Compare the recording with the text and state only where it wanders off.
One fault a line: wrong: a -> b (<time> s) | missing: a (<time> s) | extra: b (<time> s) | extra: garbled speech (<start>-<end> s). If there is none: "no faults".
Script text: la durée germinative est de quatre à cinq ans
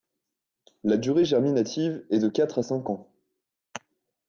no faults